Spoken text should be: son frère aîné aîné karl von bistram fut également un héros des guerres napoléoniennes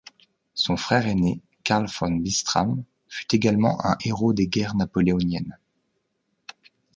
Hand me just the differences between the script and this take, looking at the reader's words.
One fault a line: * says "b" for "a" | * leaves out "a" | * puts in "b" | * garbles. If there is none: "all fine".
* leaves out "aîné"